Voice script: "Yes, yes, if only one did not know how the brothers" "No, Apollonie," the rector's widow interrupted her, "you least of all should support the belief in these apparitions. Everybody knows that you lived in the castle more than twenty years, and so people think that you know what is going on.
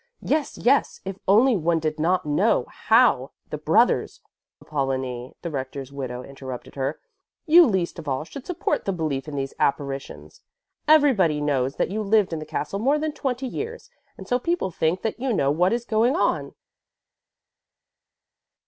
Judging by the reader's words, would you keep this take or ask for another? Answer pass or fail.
fail